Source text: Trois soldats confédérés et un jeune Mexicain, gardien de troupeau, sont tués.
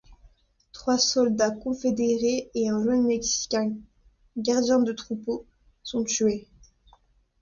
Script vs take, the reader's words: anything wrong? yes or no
no